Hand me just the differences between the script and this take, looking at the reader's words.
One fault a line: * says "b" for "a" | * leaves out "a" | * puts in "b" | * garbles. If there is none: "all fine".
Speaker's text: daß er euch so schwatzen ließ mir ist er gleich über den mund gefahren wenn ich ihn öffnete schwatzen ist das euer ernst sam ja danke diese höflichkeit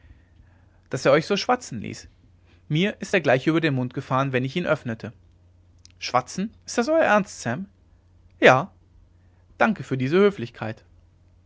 * puts in "für"